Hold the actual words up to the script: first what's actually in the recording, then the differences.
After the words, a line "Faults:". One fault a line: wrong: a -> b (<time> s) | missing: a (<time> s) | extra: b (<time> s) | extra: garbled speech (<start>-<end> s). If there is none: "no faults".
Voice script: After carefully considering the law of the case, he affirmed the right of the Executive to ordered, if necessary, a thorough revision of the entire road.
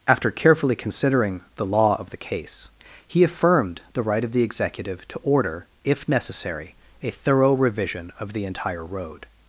After carefully considering the law of the case, he affirmed the right of the Executive to order, if necessary, a thorough revision of the entire road.
Faults:
wrong: ordered -> order (5.2 s)